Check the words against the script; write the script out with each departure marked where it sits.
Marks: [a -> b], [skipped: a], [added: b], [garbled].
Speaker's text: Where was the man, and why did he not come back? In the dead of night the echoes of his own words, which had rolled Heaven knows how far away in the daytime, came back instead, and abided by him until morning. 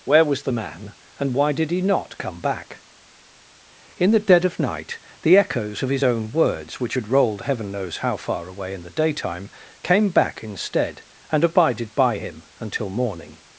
Where was the man, and why did he not come back? In the dead of night the echoes of his own words, which had rolled Heaven knows how far away in the daytime, came back instead, and abided by him until morning.